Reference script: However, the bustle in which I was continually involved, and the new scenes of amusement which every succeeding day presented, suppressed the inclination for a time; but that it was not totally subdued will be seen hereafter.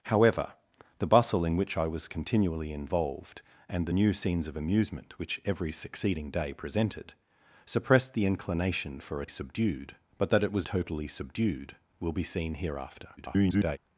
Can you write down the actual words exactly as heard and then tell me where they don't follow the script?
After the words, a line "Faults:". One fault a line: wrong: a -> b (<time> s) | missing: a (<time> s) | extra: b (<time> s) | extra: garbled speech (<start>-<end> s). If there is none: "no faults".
However, the bustle in which I was continually involved, and the new scenes of amusement which every succeeding day presented, suppressed the inclination for a subdued; but that it was totally subdued will be seen hereafter. [garbled]
Faults:
wrong: time -> subdued (9.3 s)
missing: not (10.7 s)
extra: garbled speech (13.2-13.8 s)